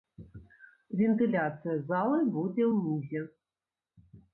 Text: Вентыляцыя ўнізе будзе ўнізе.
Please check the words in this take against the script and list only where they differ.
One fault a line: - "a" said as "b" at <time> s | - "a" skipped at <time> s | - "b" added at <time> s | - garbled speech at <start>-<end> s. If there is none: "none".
- "ўнізе" said as "залы" at 1.9 s